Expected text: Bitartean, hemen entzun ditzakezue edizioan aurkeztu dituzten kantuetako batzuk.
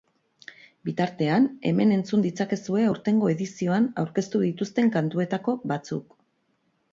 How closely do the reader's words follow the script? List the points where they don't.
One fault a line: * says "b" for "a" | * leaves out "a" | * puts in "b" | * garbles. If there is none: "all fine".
* puts in "aurtengo"